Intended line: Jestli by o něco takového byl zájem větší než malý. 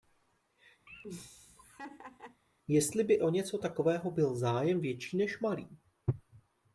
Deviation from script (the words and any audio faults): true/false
true